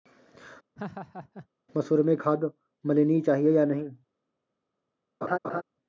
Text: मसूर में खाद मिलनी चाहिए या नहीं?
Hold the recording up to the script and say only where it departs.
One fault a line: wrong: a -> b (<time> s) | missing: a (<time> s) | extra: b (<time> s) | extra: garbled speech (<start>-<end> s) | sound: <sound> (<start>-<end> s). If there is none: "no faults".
sound: laugh (0.8-1.5 s)
sound: laugh (5.2-5.6 s)